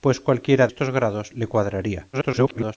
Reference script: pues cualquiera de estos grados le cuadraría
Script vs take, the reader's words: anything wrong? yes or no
yes